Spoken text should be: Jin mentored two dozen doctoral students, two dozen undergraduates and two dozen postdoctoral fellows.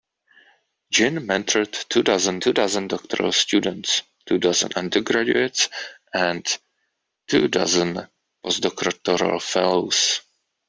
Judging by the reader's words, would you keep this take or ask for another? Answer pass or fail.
fail